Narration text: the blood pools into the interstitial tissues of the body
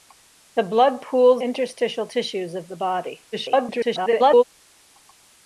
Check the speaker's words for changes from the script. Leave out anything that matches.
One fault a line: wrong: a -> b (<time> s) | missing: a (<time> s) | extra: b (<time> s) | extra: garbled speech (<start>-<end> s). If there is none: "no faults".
missing: into the (1.4 s)
extra: garbled speech (3.3-4.4 s)